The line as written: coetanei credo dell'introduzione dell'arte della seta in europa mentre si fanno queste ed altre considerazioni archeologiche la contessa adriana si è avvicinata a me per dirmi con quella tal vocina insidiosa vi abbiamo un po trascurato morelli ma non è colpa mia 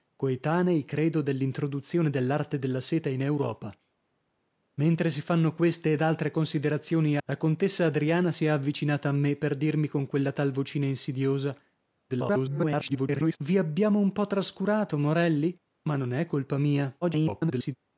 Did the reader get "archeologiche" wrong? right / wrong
wrong